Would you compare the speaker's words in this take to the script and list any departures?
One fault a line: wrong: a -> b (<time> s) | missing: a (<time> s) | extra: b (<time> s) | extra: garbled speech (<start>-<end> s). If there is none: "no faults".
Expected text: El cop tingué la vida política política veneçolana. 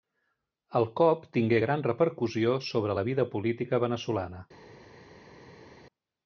extra: gran repercussió sobre (1.6 s)
missing: política (3.8 s)